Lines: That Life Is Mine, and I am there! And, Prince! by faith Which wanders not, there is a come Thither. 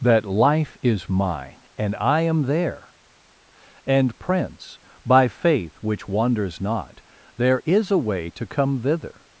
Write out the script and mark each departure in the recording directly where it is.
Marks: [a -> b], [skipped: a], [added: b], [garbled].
That Life Is Mine, and I am there! And, Prince! by faith Which wanders not, there is a [added: way to] come Thither.